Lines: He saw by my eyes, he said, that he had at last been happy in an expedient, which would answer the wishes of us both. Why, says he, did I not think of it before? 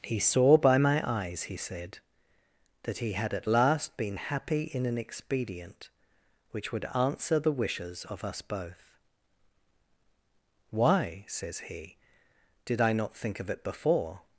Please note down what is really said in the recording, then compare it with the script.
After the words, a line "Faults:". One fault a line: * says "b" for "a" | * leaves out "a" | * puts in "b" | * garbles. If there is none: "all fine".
He saw by my eyes, he said, that he had at last been happy in an expedient, which would answer the wishes of us both. Why, says he, did I not think of it before?
Faults:
all fine